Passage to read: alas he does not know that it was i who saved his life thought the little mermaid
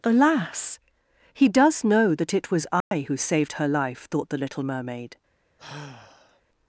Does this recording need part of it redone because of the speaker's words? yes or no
yes